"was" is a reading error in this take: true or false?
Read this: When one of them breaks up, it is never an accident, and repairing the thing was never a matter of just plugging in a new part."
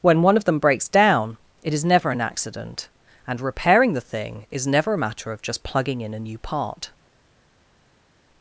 true